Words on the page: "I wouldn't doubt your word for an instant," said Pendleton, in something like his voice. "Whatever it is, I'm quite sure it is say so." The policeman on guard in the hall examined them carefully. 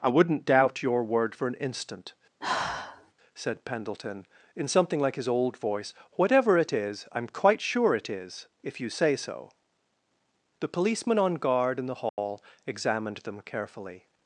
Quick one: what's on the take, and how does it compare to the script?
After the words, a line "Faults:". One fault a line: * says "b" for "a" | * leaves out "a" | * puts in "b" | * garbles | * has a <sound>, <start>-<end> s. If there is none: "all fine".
"I wouldn't doubt your word for an instant," said Pendleton, in something like his old voice. "Whatever it is, I'm quite sure it is if you say so." The policeman on guard in the hall examined them carefully.
Faults:
* has a sigh, 2.4-3.1 s
* puts in "old"
* puts in "if you"
* has a dropout, 12.1-12.2 s